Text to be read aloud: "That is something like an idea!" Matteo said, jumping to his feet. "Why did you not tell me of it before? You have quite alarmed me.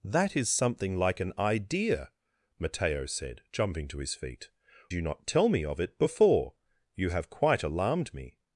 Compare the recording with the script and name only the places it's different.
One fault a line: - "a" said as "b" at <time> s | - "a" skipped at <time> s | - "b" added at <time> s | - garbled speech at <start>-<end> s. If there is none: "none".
- "Why did" skipped at 4.5 s